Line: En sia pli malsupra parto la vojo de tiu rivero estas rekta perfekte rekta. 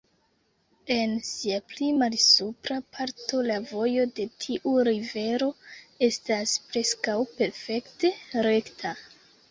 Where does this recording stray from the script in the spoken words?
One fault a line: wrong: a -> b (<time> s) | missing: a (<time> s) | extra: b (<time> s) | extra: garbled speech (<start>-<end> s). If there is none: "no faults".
wrong: rekta -> preskaŭ (6.7 s)